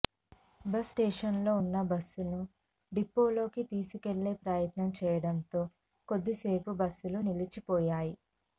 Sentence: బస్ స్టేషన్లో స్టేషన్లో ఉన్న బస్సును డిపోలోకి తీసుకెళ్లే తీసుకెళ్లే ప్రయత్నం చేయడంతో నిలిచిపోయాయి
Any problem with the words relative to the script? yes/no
yes